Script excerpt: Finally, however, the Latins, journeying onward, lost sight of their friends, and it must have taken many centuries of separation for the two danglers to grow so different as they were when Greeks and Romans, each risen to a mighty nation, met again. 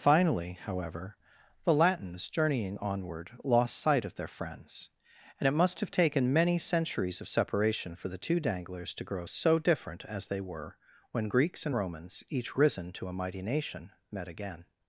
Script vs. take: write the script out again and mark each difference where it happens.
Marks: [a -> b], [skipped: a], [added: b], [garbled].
Finally, however, the Latins, journeying onward, lost sight of their friends, and it must have taken many centuries of separation for the two danglers to grow so different as they were when Greeks and Romans, each risen to a mighty nation, met again.